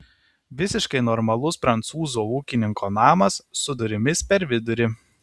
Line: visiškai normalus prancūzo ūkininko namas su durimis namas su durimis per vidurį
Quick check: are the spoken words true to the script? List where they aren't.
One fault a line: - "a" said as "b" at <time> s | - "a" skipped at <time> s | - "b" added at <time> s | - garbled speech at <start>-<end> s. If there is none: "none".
- "namas su durimis" skipped at 4.2 s